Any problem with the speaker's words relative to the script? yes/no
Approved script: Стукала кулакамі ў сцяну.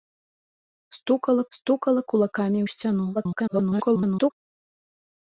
yes